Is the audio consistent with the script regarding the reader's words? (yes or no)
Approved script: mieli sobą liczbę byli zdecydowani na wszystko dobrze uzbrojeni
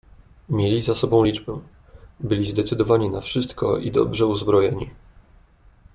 no